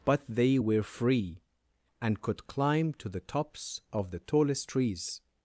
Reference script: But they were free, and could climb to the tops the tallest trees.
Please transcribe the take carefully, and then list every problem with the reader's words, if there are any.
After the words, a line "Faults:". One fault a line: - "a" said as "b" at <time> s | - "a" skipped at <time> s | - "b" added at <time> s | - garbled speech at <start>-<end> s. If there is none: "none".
But they were free, and could climb to the tops of the tallest trees.
Faults:
- "of" added at 3.9 s